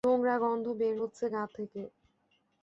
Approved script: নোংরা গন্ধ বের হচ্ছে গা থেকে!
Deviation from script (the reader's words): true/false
false